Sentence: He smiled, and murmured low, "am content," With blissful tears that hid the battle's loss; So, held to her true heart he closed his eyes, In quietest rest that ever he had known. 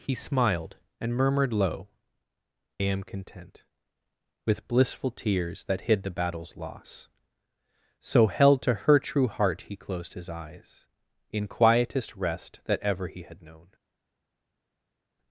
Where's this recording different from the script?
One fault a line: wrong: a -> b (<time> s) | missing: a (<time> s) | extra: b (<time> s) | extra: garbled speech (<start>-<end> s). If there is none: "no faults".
no faults